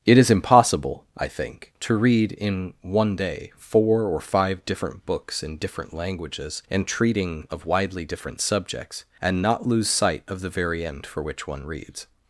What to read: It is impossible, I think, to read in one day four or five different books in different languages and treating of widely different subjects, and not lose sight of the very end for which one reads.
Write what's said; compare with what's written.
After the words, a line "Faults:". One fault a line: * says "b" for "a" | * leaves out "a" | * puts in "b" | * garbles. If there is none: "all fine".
It is impossible, I think, to read in one day four or five different books in different languages and treating of widely different subjects, and not lose sight of the very end for which one reads.
Faults:
all fine